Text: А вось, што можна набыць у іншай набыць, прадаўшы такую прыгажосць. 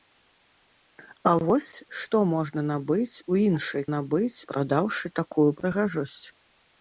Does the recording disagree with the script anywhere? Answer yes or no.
no